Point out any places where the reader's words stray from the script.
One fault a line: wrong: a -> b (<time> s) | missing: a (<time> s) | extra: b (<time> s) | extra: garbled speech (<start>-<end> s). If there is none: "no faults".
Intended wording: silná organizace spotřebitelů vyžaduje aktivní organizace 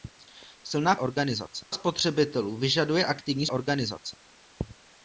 no faults